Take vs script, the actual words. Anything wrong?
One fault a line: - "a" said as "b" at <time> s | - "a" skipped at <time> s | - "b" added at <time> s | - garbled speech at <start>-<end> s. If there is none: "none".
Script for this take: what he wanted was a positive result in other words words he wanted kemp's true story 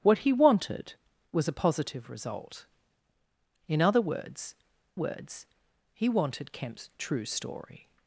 none